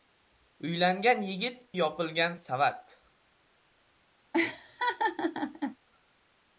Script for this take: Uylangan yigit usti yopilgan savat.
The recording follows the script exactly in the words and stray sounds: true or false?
false